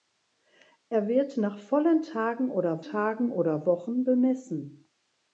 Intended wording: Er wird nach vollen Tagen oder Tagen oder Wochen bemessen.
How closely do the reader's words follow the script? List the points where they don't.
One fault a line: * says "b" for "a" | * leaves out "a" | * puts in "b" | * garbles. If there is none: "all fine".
all fine